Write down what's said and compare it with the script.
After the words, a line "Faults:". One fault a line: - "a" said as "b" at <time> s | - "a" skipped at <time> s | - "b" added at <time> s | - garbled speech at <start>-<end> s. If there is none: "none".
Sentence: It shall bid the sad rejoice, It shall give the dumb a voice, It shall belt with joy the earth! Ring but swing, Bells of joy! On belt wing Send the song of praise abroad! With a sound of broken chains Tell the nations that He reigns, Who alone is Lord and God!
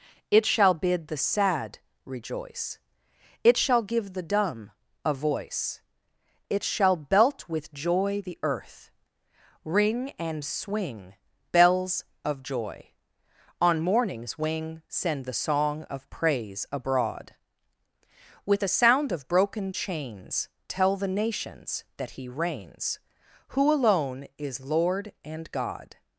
It shall bid the sad rejoice, It shall give the dumb a voice, It shall belt with joy the earth! Ring and swing, Bells of joy! On morning's wing Send the song of praise abroad! With a sound of broken chains Tell the nations that He reigns, Who alone is Lord and God!
Faults:
- "but" said as "and" at 10.2 s
- "belt" said as "morning's" at 13.8 s